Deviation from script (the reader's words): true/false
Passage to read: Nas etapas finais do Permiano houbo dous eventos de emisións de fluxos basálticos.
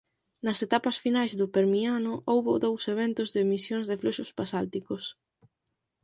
false